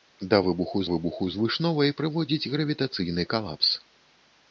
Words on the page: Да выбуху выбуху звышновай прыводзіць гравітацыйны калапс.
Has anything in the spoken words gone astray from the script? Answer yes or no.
no